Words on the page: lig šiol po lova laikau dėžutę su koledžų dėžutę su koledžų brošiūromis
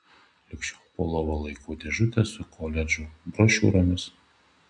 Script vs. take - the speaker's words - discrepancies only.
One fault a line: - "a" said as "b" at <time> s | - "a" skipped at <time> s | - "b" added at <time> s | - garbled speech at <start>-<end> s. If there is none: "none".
- "dėžutę su koledžų" skipped at 3.0 s